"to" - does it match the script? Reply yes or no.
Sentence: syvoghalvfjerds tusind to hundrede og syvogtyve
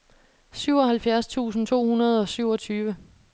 yes